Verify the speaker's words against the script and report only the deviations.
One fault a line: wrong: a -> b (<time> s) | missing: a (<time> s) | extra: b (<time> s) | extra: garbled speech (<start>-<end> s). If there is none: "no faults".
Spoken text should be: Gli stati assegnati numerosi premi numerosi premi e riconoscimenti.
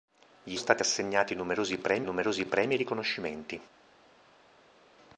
no faults